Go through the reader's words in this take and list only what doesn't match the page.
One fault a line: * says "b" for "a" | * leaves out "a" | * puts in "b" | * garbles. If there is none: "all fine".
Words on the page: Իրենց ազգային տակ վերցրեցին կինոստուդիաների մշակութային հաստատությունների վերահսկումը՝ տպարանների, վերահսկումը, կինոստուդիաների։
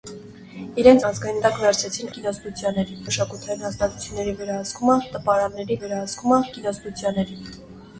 all fine